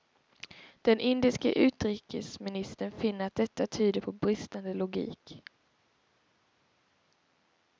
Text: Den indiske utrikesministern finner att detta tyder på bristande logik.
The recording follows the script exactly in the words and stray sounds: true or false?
true